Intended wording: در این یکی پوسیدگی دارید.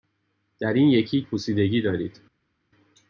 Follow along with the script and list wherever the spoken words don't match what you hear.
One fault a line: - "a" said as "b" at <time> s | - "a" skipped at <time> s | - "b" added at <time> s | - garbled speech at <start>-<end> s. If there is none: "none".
none